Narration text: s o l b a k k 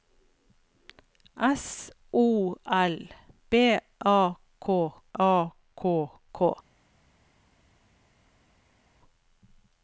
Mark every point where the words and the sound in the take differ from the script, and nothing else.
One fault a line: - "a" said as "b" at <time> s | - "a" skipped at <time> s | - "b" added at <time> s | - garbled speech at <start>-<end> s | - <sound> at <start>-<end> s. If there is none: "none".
- "a k" added at 5.2 s